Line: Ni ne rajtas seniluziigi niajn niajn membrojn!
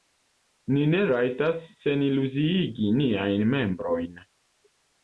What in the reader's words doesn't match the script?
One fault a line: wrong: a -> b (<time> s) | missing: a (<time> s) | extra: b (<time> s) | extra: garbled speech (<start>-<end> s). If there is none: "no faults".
missing: niajn (3.5 s)